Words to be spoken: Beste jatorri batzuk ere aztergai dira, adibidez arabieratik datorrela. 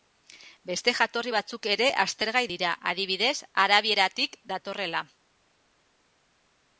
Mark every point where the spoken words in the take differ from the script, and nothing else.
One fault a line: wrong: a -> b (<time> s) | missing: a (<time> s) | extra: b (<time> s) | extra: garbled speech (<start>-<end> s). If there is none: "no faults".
no faults